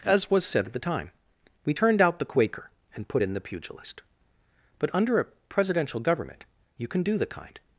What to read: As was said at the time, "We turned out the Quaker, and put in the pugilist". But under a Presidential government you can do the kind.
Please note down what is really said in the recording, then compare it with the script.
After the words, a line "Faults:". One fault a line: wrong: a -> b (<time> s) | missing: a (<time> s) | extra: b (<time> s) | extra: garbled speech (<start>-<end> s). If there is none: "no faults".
As was said at the time, "We turned out the Quaker, and put in the pugilist". But under a Presidential government you can do the kind.
Faults:
no faults